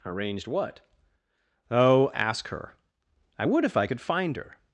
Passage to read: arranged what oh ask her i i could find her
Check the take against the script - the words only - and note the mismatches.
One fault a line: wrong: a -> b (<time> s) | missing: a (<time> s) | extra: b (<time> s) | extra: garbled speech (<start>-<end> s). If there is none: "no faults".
extra: would if (3.4 s)